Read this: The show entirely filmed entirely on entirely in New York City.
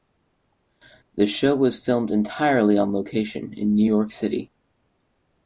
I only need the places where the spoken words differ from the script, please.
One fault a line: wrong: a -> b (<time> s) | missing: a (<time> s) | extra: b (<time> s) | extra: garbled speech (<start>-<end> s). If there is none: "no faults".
wrong: entirely -> was (1.6 s)
wrong: entirely -> location (2.9 s)